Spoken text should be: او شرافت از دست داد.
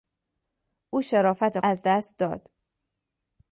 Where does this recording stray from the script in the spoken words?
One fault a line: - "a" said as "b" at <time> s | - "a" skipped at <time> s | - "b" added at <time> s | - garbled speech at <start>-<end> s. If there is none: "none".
none